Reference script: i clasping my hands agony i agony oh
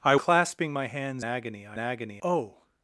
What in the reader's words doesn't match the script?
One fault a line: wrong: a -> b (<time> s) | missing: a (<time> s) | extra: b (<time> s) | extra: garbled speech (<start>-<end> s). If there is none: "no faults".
no faults